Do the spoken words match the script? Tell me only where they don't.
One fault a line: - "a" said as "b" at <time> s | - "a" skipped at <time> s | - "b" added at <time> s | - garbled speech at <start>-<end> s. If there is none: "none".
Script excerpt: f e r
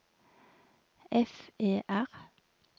none